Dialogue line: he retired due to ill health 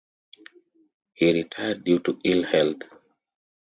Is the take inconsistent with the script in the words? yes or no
no